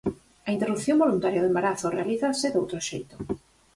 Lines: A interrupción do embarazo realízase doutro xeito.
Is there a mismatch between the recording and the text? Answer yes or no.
yes